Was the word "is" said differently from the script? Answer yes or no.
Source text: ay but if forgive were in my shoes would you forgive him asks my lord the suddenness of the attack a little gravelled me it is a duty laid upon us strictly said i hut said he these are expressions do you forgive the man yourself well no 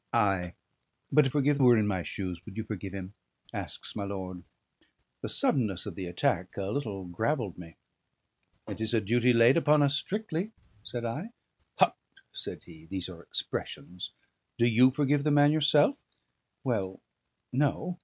no